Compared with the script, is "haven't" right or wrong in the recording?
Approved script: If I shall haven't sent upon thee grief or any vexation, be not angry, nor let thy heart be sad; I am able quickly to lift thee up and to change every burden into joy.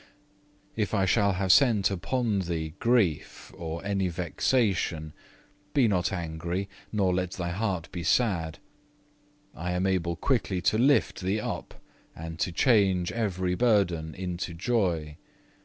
wrong